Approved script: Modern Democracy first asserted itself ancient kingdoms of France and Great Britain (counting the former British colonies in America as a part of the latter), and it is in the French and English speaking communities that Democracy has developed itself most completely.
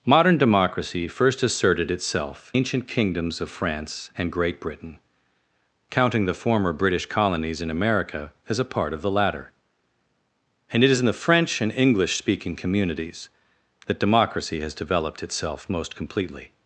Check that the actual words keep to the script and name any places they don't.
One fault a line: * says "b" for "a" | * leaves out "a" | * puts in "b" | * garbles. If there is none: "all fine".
all fine